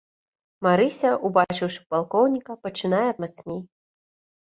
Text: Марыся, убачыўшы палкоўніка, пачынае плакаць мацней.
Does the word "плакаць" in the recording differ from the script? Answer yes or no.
yes